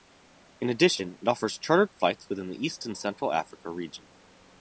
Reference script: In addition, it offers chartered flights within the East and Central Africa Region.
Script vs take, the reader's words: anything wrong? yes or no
no